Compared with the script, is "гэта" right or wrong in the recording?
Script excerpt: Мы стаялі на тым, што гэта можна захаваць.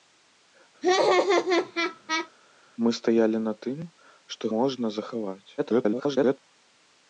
wrong